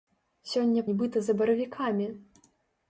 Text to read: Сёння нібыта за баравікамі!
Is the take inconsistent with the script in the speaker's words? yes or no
no